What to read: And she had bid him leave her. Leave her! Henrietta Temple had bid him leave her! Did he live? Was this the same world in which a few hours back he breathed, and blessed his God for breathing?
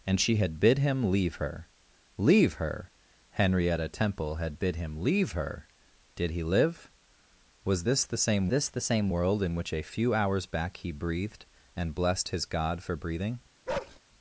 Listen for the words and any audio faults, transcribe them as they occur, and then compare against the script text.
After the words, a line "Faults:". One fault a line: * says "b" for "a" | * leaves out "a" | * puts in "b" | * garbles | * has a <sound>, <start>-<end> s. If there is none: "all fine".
And she had bid him leave her. Leave her! Henrietta Temple had bid him leave her! Did he live? Was this the same this the same world in which a few hours back he breathed, and blessed his God for breathing?
Faults:
* puts in "this the same"
* has a bark, 13.7-14.0 s